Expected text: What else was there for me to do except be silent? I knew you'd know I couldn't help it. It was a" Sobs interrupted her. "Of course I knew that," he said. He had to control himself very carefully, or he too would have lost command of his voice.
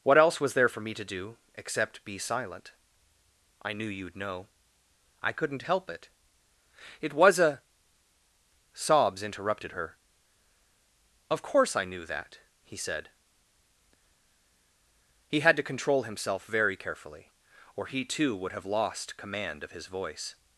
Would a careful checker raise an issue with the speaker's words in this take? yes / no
no